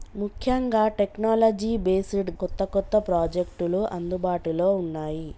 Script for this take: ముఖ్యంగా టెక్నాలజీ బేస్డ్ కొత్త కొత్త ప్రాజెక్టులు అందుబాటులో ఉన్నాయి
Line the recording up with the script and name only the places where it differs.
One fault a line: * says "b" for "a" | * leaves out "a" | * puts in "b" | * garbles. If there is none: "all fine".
all fine